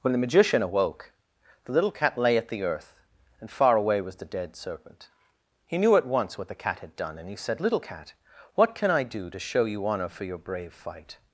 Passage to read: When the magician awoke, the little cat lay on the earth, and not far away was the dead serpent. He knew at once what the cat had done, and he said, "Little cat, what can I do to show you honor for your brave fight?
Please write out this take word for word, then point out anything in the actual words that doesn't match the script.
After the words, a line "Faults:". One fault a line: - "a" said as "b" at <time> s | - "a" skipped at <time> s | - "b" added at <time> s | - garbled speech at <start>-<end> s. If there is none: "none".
When the magician awoke, the little cat lay at the earth, and far away was the dead serpent. He knew at once what the cat had done, and he said, "Little cat, what can I do to show you honor for your brave fight?
Faults:
- "on" said as "at" at 2.4 s
- "not" skipped at 3.5 s